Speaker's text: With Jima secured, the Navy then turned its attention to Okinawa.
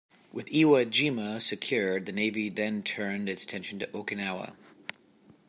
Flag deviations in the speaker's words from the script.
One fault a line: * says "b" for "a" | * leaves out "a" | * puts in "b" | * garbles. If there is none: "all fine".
* puts in "Iwo"